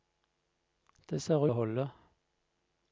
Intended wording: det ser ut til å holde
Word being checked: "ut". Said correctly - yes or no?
no